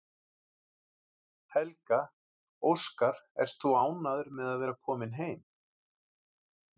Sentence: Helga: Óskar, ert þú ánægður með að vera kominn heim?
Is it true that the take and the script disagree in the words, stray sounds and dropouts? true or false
false